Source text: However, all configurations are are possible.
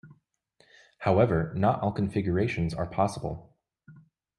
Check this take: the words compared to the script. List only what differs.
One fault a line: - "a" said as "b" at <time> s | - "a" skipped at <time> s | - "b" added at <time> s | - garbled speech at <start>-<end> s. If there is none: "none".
- "not" added at 1.6 s
- "are" skipped at 2.9 s